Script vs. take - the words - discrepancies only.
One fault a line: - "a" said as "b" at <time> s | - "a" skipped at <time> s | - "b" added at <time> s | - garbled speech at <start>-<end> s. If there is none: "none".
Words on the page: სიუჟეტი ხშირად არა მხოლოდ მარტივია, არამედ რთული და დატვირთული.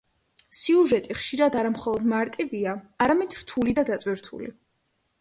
none